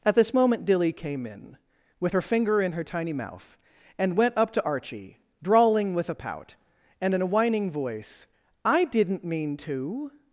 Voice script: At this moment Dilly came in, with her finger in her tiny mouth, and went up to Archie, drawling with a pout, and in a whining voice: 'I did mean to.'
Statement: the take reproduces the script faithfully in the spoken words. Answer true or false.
false